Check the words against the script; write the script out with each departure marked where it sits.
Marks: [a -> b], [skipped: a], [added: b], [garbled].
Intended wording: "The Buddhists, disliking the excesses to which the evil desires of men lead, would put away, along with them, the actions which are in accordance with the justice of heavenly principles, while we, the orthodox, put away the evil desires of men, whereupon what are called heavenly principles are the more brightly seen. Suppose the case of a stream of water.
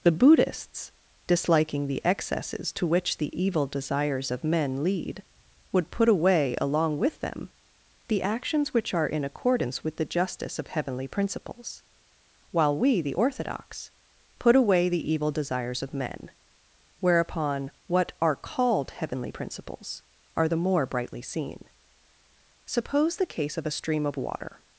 "The Buddhists, disliking the excesses to which the evil desires of men lead, would put away, along with them, the actions which are in accordance with the justice of heavenly principles, while we, the orthodox, put away the evil desires of men, whereupon what are called heavenly principles are the more brightly seen. Suppose the case of a stream of water.